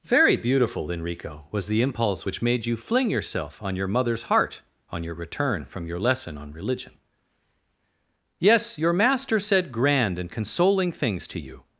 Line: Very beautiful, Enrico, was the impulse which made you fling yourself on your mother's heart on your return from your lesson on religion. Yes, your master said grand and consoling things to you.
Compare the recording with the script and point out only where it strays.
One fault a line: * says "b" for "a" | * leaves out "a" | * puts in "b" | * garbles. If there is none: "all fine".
all fine